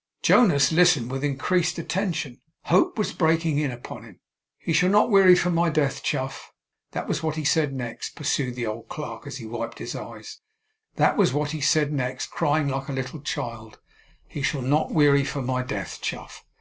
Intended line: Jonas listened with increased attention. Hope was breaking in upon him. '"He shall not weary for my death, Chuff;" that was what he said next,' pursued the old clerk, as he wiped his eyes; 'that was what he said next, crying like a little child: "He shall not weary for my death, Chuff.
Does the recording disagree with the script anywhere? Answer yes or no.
no